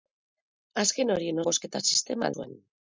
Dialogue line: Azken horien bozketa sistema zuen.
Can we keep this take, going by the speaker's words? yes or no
yes